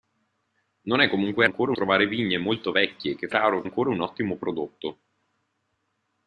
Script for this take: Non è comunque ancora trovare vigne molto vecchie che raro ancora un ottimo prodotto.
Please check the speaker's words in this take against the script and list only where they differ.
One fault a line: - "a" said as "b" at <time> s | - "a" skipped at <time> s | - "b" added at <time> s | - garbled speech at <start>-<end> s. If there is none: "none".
none